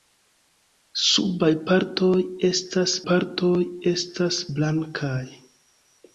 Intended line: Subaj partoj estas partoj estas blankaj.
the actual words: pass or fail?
pass